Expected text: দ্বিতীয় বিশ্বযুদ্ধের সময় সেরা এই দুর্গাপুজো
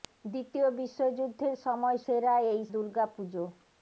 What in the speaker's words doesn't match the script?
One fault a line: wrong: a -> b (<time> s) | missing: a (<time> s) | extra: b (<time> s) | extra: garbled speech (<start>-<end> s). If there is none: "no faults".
no faults